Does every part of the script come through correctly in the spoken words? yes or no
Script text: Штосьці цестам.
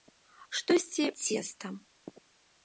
yes